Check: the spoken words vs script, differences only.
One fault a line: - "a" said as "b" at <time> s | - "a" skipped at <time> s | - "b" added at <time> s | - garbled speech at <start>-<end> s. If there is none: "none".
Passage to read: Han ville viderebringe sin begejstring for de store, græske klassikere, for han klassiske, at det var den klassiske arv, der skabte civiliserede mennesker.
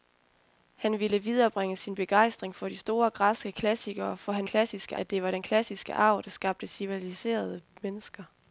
none